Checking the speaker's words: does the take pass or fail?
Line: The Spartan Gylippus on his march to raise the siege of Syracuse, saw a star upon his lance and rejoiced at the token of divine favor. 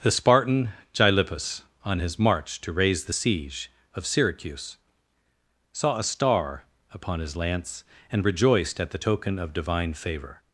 pass